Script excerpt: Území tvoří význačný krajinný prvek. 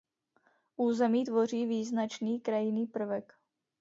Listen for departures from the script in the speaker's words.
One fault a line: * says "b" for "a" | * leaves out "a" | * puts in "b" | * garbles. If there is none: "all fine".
all fine